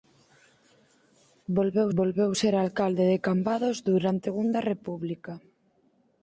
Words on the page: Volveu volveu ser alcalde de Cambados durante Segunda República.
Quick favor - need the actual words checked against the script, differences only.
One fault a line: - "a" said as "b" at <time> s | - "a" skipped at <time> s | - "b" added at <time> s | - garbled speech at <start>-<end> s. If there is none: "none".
none